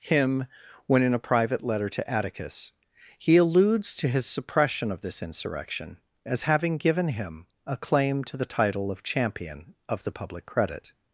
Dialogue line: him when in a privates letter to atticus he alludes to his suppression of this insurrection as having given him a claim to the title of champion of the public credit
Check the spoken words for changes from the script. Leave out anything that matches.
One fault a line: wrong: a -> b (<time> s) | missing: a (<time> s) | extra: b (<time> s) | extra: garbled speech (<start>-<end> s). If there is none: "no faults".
wrong: privates -> private (1.2 s)